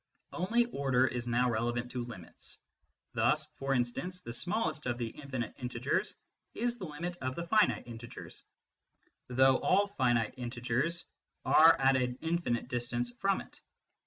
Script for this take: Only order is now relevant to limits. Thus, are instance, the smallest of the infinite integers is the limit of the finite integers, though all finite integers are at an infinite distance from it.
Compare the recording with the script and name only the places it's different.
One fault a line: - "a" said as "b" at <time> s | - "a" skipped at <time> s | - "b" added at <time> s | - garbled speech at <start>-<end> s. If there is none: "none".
- "are" said as "for" at 3.6 s